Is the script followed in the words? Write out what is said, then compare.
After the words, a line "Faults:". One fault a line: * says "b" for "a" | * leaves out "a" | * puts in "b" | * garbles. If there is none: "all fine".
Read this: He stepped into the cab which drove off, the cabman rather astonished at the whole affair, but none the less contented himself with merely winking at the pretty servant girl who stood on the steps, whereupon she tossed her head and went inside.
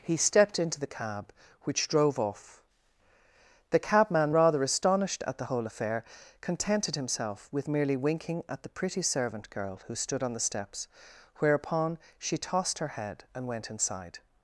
He stepped into the cab which drove off, the cabman rather astonished at the whole affair, contented himself with merely winking at the pretty servant girl who stood on the steps, whereupon she tossed her head and went inside.
Faults:
* leaves out "but none the less"